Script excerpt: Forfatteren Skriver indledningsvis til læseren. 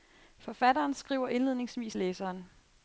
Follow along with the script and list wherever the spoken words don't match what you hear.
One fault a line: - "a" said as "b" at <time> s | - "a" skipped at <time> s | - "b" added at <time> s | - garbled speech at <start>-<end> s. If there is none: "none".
- "til" skipped at 1.9 s